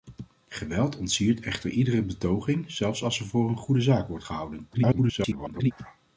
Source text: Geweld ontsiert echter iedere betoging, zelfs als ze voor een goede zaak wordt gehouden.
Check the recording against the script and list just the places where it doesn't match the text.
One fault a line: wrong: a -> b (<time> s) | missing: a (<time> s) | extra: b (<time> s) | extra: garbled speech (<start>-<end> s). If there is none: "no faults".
extra: garbled speech (4.7-5.7 s)